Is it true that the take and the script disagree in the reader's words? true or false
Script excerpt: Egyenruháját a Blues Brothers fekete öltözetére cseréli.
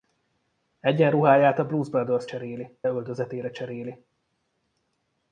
true